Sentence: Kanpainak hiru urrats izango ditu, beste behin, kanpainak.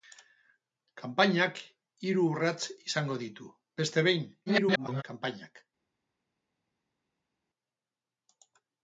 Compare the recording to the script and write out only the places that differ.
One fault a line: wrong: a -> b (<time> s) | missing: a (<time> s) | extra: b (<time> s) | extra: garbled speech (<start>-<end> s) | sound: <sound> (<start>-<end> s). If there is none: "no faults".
extra: garbled speech (4.5-5.0 s)